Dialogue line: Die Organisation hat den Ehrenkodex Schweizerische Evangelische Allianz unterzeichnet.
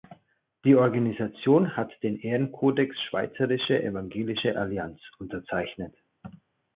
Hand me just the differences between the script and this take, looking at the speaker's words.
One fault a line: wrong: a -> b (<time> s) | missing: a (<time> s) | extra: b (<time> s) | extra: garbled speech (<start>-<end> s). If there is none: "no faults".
no faults